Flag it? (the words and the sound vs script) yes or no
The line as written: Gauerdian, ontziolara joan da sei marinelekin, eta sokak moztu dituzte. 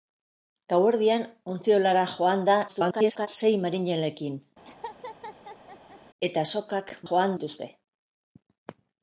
yes